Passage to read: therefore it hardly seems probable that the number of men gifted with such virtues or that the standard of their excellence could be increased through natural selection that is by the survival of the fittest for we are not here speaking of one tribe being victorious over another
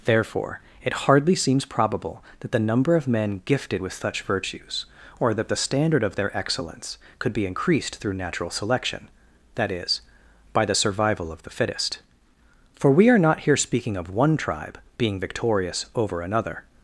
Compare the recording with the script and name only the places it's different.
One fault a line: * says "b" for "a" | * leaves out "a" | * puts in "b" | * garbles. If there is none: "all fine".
all fine